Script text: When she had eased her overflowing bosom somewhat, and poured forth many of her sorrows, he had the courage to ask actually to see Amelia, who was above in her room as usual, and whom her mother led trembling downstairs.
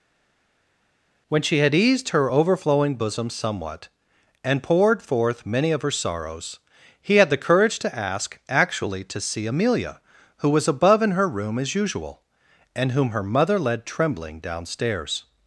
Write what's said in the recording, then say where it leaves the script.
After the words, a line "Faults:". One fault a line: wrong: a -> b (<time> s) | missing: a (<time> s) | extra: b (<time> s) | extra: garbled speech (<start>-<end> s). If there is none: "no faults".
When she had eased her overflowing bosom somewhat, and poured forth many of her sorrows, he had the courage to ask actually to see Amelia, who was above in her room as usual, and whom her mother led trembling downstairs.
Faults:
no faults